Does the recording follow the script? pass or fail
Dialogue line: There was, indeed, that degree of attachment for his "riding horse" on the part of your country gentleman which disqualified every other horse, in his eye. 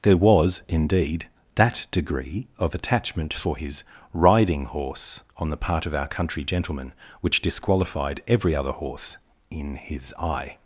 fail